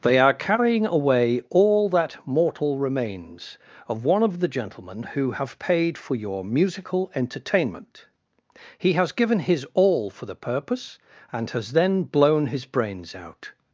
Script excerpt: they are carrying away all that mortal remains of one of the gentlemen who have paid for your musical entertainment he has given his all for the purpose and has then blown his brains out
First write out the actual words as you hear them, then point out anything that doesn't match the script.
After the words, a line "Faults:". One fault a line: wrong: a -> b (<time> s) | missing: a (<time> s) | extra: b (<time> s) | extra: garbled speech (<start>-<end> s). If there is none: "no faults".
they are carrying away all that mortal remains of one of the gentlemen who have paid for your musical entertainment he has given his all for the purpose and has then blown his brains out
Faults:
no faults